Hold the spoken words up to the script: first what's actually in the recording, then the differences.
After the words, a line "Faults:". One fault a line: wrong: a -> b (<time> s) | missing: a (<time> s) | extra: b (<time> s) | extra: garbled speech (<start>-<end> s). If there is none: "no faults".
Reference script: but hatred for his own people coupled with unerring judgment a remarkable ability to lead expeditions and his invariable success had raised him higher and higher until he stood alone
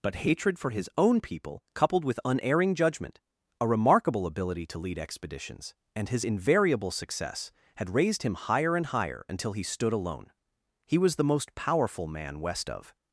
but hatred for his own people coupled with unerring judgment a remarkable ability to lead expeditions and his invariable success had raised him higher and higher until he stood alone he was the most powerful man west of
Faults:
extra: he was the most powerful man west of (10.9 s)